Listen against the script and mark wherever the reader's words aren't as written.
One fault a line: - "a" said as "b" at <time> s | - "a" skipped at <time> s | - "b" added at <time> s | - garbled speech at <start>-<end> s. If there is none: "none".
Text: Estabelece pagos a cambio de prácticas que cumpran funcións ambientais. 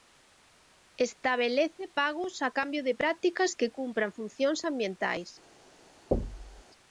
none